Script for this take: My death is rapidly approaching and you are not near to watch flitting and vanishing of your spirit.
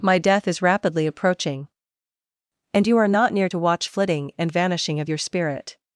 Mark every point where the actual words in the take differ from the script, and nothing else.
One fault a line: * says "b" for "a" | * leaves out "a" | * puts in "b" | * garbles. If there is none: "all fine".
all fine